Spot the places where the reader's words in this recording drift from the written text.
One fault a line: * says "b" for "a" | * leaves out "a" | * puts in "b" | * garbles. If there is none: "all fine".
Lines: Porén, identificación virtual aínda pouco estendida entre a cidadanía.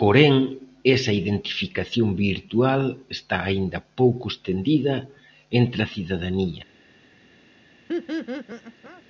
* puts in "esa"
* puts in "está"